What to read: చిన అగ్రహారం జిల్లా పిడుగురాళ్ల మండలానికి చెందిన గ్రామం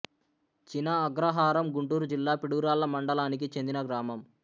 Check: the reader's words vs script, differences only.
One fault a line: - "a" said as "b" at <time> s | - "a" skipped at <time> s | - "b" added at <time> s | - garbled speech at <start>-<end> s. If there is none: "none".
- "గుంటూరు" added at 1.8 s